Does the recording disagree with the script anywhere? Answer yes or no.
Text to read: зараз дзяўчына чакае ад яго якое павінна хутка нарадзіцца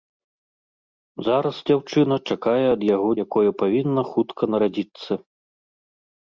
no